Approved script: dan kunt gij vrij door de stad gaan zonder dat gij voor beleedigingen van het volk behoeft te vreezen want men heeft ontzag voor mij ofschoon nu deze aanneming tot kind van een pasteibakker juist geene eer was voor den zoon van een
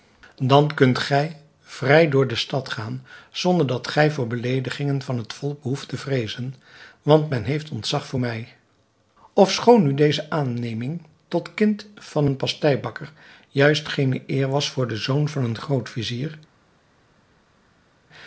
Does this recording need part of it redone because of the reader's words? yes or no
no